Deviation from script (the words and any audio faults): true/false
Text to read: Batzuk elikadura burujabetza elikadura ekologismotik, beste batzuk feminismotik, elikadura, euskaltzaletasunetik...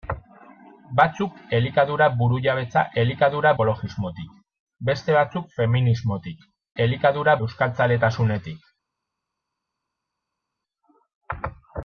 false